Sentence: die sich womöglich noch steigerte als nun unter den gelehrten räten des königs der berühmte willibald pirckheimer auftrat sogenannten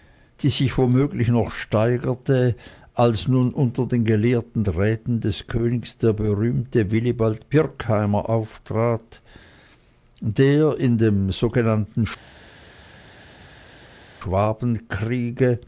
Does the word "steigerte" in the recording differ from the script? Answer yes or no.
no